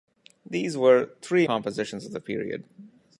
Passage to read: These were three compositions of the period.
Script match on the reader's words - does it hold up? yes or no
yes